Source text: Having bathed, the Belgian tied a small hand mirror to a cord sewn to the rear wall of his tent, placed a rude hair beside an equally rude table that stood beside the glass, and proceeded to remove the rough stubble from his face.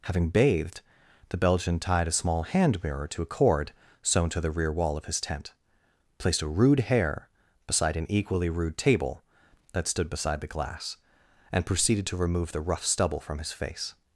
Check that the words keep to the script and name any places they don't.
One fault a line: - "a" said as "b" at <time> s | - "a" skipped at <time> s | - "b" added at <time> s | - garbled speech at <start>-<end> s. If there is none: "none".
none